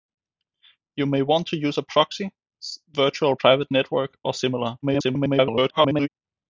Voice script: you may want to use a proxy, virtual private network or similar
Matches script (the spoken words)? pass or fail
fail